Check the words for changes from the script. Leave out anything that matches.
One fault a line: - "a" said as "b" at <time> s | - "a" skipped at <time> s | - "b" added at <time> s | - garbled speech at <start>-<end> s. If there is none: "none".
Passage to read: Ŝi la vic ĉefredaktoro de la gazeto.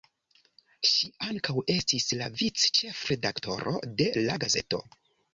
- "ankaŭ estis" added at 1.2 s